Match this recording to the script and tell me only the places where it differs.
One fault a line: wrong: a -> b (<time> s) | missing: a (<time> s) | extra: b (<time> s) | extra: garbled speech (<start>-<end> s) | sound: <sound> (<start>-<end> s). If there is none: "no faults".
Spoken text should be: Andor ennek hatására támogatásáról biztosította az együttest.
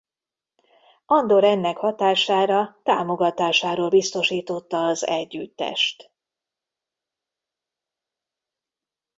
no faults